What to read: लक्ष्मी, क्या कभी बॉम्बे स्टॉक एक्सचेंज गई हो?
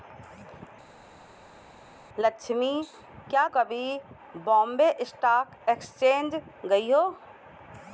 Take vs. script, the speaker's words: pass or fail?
pass